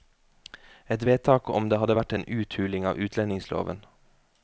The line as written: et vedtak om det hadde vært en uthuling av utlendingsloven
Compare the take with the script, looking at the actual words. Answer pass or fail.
pass